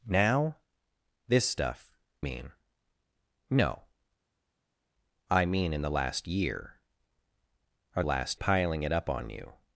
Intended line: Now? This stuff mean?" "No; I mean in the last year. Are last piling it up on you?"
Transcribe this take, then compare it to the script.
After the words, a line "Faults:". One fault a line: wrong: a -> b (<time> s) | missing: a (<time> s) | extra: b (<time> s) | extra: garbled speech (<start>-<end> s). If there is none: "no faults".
Now? This stuff mean?" "No; I mean in the last year. Are last piling it up on you?"
Faults:
no faults